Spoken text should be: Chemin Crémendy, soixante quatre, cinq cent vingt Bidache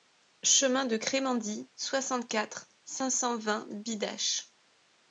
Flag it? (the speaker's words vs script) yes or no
yes